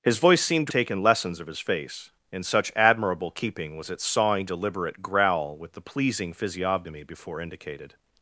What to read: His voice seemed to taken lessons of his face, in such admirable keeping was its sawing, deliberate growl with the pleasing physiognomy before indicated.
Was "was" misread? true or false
false